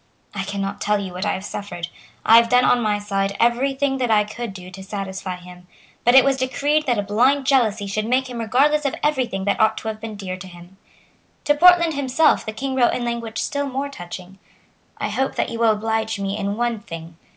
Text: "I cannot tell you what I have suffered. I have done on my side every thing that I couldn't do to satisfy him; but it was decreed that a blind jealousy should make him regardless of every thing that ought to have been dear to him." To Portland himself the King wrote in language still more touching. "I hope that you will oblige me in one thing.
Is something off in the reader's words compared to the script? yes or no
yes